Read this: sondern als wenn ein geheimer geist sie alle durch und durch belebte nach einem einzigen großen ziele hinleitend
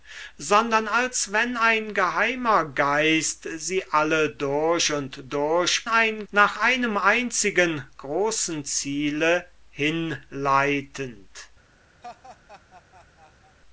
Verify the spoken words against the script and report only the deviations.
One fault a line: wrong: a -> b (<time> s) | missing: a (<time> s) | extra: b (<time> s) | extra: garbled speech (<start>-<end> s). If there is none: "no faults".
wrong: belebte -> ein (5.9 s)